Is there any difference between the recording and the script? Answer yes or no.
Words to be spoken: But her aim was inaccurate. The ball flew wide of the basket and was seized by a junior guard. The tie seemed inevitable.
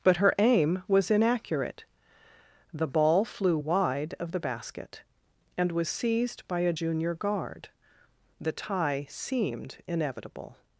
no